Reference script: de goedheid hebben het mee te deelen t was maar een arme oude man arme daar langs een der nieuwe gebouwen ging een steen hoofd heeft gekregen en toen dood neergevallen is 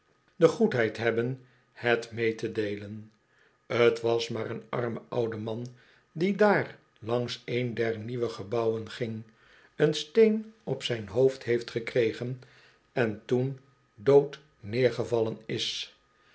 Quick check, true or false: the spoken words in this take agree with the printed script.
false